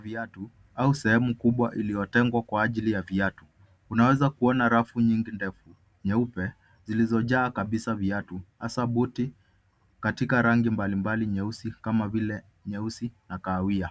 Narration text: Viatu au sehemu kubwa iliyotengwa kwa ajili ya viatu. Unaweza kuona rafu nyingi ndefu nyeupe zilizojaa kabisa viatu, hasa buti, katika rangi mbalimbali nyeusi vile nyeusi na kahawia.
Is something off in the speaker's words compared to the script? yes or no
yes